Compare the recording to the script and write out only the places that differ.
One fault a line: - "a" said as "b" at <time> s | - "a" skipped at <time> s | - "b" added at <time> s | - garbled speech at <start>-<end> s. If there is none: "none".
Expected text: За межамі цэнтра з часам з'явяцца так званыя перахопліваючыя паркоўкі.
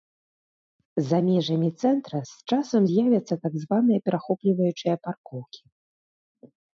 none